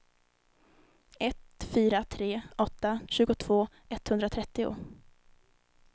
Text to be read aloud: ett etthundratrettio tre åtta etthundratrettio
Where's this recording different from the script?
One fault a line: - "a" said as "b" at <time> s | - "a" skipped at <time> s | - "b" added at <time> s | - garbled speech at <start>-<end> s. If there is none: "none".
- "etthundratrettio" said as "fyra" at 1.6 s
- "tjugotvå" added at 3.1 s